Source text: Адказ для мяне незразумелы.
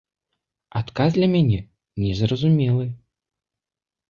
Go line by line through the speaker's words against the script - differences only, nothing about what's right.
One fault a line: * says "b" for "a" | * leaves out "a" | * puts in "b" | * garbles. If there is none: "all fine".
all fine